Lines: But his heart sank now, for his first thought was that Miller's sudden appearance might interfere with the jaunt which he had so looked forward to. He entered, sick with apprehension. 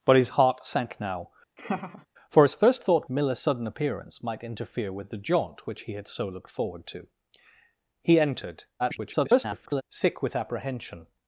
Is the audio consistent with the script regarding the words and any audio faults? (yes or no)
no